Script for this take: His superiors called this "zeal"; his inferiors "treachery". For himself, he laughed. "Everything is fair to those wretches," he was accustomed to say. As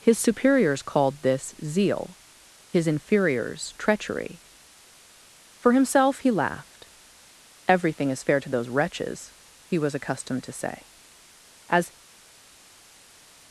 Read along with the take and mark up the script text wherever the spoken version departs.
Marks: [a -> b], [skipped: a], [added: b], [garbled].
His superiors called this "zeal"; his inferiors "treachery". For himself, he laughed. "Everything is fair to those wretches," he was accustomed to say. As